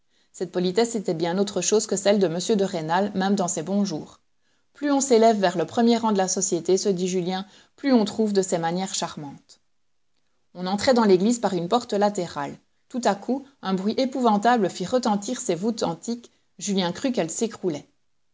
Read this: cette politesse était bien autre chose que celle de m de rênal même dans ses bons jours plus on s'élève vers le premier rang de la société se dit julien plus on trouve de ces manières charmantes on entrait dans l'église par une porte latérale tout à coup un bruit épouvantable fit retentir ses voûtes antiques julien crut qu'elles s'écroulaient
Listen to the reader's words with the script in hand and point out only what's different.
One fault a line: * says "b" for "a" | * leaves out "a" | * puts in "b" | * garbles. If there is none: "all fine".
all fine